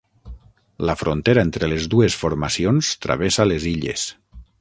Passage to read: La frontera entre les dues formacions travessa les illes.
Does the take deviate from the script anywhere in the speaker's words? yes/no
no